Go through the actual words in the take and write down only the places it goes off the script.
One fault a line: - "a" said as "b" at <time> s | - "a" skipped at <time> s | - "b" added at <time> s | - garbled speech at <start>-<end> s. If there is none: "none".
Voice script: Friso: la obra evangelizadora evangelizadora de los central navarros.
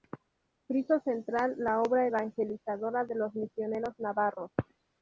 - "central" added at 1.0 s
- "evangelizadora" skipped at 3.0 s
- "central" said as "misioneros" at 3.4 s